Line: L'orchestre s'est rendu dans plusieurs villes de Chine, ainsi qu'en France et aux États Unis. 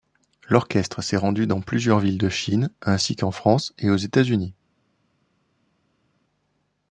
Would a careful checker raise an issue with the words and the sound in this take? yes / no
no